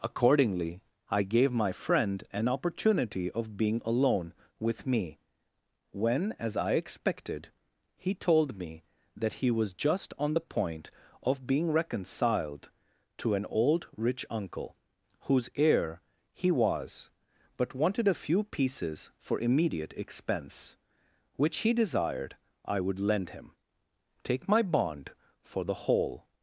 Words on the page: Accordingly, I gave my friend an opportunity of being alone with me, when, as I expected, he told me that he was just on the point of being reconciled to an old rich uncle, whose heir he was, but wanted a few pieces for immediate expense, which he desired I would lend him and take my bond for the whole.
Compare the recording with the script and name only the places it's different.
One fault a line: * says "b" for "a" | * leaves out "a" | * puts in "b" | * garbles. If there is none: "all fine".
* leaves out "and"